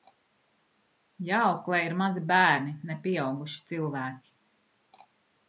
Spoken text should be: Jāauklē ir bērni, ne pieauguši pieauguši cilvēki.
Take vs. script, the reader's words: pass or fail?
fail